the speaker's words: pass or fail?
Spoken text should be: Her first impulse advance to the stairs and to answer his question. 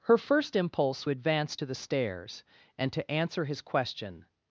pass